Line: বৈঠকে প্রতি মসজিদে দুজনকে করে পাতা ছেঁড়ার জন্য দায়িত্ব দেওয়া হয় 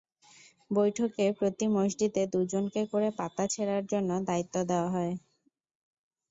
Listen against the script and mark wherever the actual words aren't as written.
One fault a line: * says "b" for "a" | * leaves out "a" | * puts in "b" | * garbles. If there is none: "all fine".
all fine